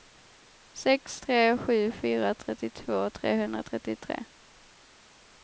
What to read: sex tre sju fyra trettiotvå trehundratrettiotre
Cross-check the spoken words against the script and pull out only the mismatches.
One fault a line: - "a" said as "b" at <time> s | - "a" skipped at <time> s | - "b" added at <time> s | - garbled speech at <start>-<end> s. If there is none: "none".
none